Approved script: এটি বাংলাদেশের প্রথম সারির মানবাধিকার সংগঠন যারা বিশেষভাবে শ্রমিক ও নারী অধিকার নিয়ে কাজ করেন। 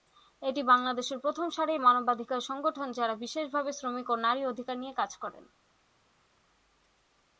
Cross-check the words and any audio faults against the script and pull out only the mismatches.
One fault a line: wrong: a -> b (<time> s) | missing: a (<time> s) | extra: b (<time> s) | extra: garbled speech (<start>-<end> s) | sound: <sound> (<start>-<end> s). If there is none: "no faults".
no faults